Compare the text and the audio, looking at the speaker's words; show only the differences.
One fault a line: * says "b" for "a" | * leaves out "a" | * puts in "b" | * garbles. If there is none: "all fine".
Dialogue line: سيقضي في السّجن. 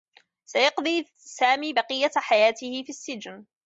* puts in "سامي بقيّة حياته"